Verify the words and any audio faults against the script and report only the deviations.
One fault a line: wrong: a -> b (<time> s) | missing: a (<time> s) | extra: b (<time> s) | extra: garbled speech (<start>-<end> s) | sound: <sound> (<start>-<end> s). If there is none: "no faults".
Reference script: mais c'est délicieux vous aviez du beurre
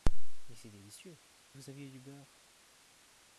no faults